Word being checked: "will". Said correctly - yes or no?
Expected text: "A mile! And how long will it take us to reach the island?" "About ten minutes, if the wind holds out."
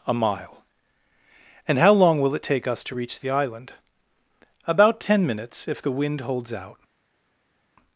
yes